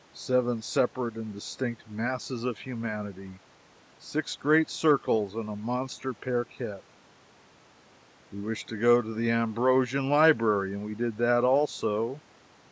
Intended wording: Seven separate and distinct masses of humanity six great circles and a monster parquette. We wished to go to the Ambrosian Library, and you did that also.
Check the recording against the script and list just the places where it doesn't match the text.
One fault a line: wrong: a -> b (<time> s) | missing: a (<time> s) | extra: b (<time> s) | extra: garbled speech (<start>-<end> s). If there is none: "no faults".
wrong: you -> we (10.8 s)